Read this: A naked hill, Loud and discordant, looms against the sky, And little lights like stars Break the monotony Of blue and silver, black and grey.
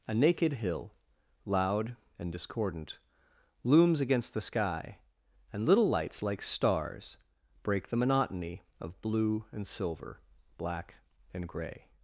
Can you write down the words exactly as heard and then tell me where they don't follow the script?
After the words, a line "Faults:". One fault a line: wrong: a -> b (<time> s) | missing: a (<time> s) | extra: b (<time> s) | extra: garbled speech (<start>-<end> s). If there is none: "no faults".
A naked hill, Loud and discordant, looms against the sky, And little lights like stars Break the monotony Of blue and silver, black and grey.
Faults:
no faults